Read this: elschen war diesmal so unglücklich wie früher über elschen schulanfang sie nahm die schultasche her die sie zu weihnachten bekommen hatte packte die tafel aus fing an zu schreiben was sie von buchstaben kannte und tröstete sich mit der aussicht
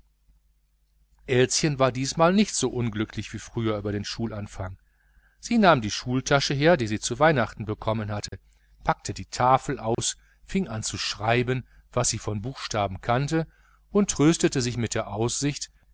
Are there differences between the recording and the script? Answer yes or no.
yes